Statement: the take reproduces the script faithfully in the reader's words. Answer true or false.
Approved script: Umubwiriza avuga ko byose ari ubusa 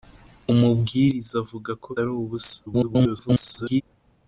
false